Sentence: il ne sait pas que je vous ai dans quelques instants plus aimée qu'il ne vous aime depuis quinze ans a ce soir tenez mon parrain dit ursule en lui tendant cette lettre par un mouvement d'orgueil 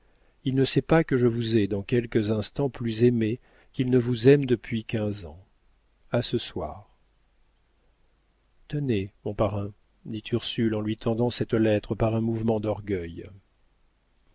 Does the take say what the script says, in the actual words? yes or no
yes